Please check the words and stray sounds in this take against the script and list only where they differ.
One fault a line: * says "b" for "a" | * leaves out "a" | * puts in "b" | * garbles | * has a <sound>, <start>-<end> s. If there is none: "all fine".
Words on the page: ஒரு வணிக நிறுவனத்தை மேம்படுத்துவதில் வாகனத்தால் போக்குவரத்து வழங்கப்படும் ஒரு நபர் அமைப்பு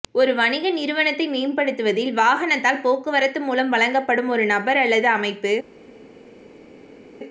* puts in "மூலம்"
* puts in "அல்லது"